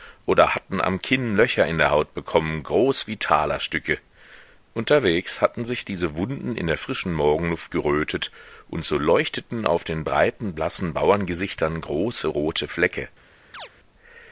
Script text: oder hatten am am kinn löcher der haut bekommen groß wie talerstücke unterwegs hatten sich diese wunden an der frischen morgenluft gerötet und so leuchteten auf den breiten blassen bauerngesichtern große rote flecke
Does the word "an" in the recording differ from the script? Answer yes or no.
yes